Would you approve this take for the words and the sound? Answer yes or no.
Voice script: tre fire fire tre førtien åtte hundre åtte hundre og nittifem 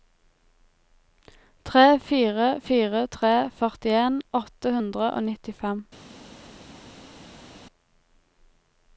no